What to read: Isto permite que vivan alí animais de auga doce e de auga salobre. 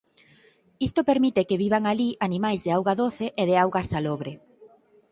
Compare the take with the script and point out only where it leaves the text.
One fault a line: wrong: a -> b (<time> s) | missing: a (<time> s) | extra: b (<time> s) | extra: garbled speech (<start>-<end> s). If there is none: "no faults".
no faults